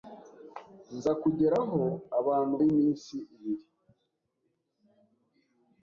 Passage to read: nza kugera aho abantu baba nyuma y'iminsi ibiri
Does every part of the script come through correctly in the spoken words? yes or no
no